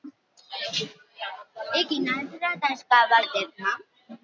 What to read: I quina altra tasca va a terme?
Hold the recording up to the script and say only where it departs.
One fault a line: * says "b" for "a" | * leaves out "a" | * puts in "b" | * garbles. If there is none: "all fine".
all fine